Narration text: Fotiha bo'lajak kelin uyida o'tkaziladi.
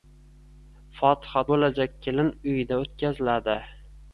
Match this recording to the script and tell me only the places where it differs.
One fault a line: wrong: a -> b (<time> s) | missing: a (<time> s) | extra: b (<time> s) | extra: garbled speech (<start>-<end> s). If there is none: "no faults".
no faults